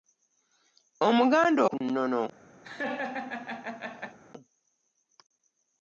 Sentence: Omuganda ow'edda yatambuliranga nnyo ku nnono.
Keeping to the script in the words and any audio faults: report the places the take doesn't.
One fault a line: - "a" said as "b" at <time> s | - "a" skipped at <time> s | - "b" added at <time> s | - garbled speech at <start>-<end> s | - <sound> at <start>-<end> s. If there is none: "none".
- "ow'edda yatambuliranga nnyo" skipped at 1.6 s
- laugh at 2.6-4.2 s